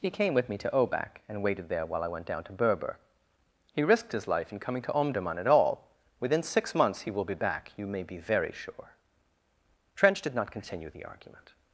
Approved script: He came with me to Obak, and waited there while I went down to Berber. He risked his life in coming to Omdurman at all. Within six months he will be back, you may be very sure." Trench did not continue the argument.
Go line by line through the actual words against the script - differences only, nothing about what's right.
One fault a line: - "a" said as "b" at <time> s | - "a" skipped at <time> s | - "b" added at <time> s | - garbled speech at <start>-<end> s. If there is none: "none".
none